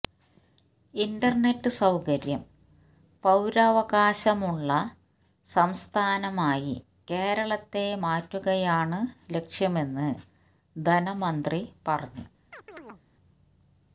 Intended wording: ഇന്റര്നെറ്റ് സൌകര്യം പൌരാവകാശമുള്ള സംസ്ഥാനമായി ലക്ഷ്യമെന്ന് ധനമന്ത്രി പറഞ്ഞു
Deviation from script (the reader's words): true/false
true